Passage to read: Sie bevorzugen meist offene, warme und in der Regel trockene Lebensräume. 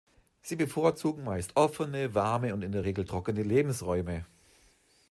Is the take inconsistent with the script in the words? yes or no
no